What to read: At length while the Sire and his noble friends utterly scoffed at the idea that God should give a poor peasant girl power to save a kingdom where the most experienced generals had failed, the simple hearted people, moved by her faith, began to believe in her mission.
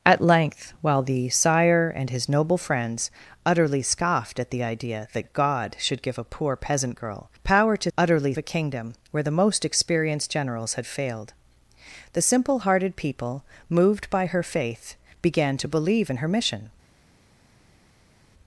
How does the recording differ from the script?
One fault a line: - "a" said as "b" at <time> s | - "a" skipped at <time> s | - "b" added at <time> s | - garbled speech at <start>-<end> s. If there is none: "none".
- "save" said as "utterly" at 8.0 s